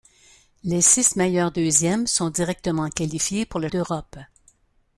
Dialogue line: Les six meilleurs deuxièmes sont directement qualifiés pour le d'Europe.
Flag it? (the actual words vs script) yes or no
no